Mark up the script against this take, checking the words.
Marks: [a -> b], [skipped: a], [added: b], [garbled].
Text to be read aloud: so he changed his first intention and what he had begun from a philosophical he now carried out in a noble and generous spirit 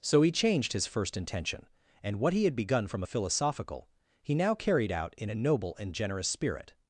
so he changed his first intention and what he had begun from a philosophical he now carried out in a noble and generous spirit